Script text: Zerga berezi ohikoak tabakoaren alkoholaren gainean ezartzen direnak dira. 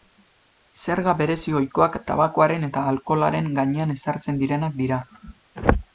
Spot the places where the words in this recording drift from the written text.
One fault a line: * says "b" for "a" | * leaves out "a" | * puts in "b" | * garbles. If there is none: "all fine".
* puts in "eta"